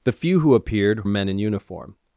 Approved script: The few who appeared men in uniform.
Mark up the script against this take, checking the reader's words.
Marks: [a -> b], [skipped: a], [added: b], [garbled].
The few who appeared men in uniform.